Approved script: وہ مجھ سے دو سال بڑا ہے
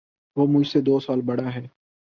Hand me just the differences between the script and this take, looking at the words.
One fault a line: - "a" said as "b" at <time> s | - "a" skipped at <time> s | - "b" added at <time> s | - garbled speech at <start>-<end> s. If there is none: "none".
none